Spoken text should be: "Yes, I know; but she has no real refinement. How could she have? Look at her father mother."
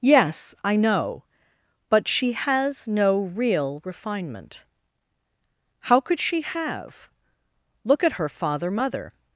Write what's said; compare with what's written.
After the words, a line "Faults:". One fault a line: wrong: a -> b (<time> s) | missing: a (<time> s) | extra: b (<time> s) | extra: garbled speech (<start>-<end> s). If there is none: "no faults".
"Yes, I know; but she has no real refinement. How could she have? Look at her father mother."
Faults:
no faults